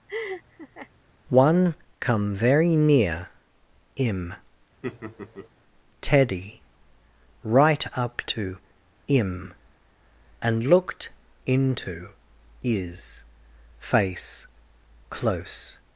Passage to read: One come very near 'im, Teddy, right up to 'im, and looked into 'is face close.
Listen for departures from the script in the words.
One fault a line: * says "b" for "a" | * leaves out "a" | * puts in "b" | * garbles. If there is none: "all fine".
all fine